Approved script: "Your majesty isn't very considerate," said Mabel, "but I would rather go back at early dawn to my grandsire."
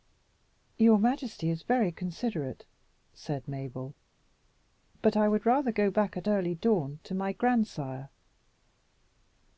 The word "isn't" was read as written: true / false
false